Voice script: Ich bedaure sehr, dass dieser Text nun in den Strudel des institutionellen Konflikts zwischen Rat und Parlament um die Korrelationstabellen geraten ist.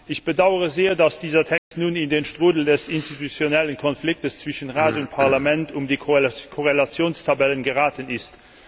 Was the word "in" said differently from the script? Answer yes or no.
no